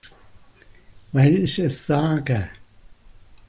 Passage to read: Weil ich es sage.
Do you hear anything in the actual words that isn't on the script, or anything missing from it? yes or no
no